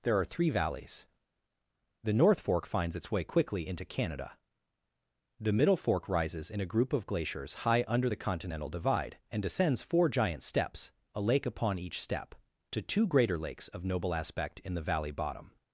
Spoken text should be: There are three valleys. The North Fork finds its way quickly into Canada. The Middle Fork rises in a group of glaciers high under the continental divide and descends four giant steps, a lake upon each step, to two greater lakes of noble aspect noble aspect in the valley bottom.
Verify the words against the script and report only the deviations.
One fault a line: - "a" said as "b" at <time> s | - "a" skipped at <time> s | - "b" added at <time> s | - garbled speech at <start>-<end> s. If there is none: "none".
- "noble aspect" skipped at 14.6 s